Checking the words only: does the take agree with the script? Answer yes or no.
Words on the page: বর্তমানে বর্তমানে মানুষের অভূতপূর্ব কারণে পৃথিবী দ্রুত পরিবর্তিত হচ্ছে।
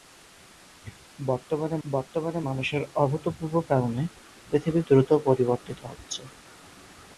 yes